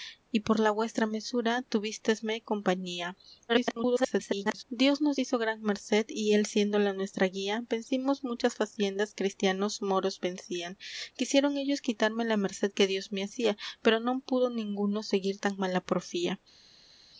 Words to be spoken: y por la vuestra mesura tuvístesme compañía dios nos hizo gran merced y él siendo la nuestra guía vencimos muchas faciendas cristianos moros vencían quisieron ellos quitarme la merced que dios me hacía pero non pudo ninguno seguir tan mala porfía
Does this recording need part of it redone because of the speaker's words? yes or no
yes